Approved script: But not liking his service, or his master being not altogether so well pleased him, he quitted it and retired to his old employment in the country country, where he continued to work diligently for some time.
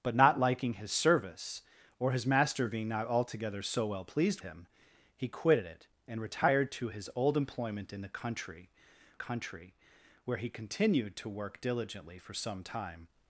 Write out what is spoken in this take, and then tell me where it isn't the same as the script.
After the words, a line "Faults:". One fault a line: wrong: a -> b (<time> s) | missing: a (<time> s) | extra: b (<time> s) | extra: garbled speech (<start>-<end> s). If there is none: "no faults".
But not liking his service, or his master being not altogether so well pleased him, he quitted it and retired to his old employment in the country country, where he continued to work diligently for some time.
Faults:
no faults